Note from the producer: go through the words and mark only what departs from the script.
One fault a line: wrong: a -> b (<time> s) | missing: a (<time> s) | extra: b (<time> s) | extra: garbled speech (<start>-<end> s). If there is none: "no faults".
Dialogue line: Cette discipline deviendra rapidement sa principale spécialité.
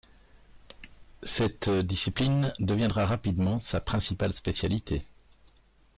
no faults